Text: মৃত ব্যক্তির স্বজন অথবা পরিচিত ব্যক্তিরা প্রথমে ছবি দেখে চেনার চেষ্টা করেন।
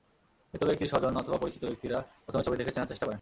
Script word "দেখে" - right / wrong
right